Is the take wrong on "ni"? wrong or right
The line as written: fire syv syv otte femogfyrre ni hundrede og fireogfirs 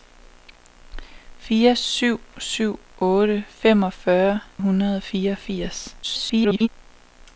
wrong